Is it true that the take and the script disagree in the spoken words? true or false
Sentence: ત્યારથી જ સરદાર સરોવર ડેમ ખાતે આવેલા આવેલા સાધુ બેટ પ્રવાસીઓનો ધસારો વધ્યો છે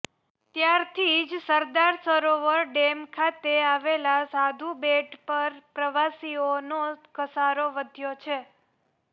true